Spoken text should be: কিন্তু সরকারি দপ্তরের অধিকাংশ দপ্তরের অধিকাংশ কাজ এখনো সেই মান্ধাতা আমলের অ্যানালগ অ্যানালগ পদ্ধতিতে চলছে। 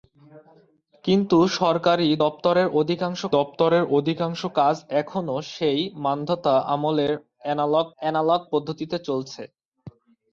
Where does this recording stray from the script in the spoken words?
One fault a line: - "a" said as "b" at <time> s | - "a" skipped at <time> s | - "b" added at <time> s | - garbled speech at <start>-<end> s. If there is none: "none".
none